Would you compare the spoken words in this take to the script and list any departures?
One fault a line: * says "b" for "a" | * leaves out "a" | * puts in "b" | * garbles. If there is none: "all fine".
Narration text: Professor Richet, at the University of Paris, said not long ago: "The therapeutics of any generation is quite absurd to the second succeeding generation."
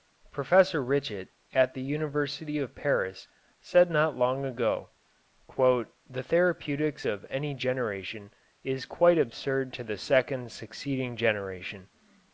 all fine